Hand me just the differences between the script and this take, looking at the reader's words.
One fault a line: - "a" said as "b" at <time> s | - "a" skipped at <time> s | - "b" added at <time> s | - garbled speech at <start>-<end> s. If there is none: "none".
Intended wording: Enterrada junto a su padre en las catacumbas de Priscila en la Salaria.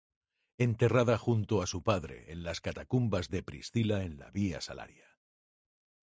- "Vía" added at 4.3 s